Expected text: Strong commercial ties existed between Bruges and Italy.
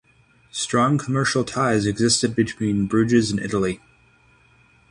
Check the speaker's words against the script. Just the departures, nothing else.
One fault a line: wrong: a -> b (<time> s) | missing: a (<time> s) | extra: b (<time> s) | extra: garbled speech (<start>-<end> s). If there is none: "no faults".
no faults